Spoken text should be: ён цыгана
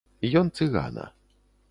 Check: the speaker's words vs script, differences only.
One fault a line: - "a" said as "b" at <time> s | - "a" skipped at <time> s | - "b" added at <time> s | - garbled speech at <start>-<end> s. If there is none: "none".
none